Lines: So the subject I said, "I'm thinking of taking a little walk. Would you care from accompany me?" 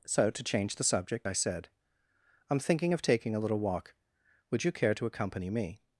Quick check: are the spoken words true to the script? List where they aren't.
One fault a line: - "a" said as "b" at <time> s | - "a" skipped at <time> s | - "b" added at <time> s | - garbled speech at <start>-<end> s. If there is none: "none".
- "to change" added at 0.3 s
- "from" said as "to" at 4.9 s